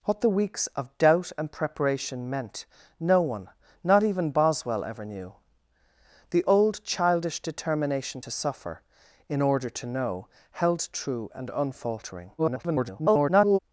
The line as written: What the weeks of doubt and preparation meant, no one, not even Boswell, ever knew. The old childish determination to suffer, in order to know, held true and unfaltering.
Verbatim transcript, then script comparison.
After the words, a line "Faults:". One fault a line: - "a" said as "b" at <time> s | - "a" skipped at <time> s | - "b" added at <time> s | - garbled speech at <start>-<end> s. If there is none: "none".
What the weeks of doubt and preparation meant, no one, not even Boswell, ever knew. The old childish determination to suffer, in order to know, held true and unfaltering. [garbled]
Faults:
- garbled speech at 12.4-13.6 s